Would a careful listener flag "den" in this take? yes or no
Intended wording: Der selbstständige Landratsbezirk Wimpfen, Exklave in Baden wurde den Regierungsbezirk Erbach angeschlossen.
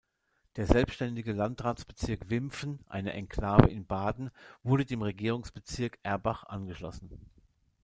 yes